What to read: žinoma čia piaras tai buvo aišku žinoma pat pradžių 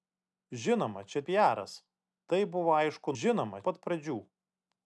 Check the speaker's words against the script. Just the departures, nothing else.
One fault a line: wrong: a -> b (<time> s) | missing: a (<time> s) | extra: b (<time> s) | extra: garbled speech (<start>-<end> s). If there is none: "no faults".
no faults